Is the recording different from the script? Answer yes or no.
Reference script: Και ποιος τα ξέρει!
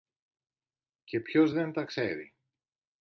yes